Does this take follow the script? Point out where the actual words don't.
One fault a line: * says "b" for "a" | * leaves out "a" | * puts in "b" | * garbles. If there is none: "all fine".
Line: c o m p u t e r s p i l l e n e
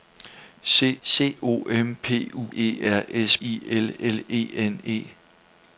* puts in "c"
* leaves out "t"
* leaves out "p"